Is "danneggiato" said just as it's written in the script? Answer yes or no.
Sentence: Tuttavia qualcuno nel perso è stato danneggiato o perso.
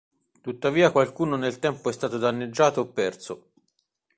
yes